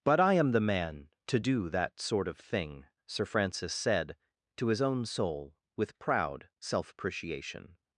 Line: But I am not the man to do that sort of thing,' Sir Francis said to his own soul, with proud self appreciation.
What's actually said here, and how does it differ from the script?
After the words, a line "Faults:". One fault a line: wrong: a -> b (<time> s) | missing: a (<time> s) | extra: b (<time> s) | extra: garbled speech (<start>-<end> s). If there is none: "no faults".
But I am the man to do that sort of thing,' Sir Francis said to his own soul, with proud self appreciation.
Faults:
missing: not (0.5 s)